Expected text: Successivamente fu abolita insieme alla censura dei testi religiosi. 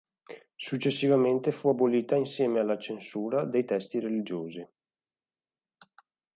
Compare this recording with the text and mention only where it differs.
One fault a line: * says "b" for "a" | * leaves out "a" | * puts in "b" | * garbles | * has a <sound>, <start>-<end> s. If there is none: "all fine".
all fine